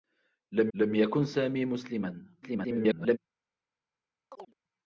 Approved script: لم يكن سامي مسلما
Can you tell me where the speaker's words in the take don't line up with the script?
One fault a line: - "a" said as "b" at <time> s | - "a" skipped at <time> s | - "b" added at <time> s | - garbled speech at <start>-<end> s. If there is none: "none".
- "لم" added at 0.7 s
- garbled speech at 2.4-3.2 s